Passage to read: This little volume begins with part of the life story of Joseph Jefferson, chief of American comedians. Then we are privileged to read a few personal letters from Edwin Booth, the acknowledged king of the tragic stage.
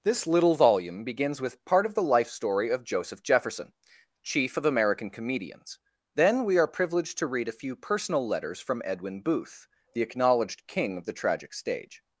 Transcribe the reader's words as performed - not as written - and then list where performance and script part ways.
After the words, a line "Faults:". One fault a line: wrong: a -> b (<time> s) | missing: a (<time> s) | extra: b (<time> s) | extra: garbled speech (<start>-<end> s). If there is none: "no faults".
This little volume begins with part of the life story of Joseph Jefferson, chief of American comedians. Then we are privileged to read a few personal letters from Edwin Booth, the acknowledged king of the tragic stage.
Faults:
no faults